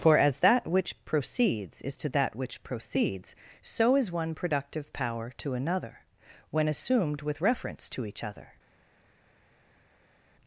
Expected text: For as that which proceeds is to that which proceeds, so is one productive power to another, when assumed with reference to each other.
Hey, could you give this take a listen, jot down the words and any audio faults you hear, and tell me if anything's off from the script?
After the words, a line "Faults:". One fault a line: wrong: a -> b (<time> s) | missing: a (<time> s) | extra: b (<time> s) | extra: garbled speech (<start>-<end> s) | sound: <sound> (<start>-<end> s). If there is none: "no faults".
For as that which proceeds is to that which proceeds, so is one productive power to another, when assumed with reference to each other.
Faults:
no faults